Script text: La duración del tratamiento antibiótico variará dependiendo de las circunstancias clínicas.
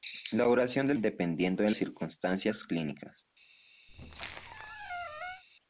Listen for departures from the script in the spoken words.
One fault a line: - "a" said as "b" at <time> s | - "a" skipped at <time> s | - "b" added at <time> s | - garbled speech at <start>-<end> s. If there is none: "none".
- "tratamiento antibiótico variará" skipped at 1.0 s
- "las" skipped at 1.7 s